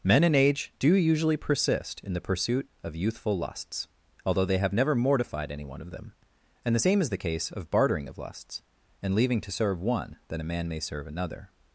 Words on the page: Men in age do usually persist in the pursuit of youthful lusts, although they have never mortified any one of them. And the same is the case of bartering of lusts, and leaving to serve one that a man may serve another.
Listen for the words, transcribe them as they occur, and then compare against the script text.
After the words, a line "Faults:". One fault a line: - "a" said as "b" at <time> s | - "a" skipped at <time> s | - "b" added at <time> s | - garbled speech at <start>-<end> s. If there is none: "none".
Men in age do usually persist in the pursuit of youthful lusts, although they have never mortified any one of them. And the same is the case of bartering of lusts, and leaving to serve one that a man may serve another.
Faults:
none